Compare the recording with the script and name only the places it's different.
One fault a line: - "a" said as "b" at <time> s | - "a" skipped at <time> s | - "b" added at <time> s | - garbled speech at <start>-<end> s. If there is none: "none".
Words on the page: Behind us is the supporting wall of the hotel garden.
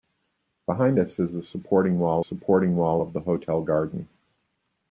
- "supporting wall" added at 2.2 s